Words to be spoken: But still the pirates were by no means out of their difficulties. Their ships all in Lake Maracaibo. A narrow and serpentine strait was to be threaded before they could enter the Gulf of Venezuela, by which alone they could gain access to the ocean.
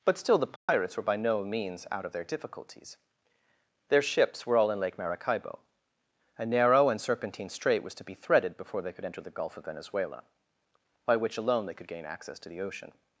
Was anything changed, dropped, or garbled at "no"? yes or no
no